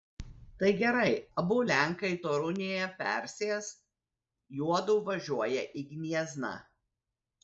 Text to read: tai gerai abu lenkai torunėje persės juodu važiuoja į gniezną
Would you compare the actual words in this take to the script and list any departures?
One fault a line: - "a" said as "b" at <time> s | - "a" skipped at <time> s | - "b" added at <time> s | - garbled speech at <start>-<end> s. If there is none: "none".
none